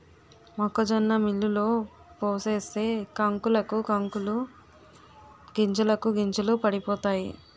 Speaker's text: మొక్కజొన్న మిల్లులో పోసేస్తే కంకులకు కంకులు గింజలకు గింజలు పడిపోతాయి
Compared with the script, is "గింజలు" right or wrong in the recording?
right